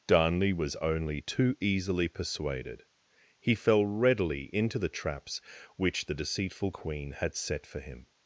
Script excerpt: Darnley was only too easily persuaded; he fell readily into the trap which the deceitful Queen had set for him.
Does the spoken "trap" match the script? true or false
false